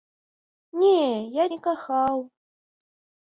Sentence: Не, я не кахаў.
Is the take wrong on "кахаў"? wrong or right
right